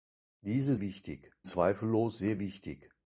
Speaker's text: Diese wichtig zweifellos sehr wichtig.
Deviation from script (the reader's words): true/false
false